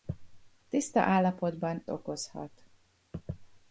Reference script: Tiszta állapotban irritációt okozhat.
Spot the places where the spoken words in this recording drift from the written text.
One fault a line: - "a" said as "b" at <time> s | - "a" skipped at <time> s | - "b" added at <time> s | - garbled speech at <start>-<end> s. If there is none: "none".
- "irritációt" skipped at 1.8 s